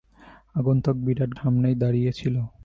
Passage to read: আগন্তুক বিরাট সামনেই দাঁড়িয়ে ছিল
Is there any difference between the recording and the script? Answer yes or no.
no